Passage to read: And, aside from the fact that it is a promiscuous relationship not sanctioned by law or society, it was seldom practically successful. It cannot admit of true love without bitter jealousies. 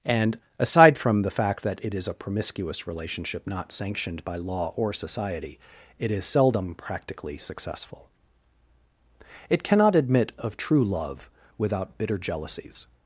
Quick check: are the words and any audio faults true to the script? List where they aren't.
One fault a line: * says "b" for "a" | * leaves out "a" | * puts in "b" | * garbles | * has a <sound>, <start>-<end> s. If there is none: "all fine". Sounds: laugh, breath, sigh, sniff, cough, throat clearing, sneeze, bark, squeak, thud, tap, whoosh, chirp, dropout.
* says "is" for "was"